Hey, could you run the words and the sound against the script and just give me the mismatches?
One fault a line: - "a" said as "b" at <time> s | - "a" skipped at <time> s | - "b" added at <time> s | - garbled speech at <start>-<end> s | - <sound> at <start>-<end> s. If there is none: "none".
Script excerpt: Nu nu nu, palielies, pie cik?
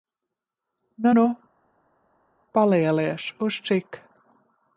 - "nu" skipped at 1.4 s
- "pie" said as "uz" at 3.4 s